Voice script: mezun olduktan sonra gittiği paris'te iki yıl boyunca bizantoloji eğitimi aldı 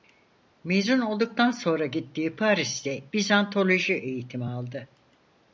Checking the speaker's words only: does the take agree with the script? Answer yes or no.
no